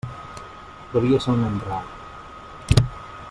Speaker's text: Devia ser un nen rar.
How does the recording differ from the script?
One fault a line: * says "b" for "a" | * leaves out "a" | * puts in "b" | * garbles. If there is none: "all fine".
all fine